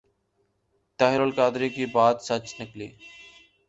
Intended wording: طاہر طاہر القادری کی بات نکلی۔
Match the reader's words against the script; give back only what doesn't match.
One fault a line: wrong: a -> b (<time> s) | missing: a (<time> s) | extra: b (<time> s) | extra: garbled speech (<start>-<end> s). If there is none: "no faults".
missing: طاہر (1.2 s)
extra: سچ (2.2 s)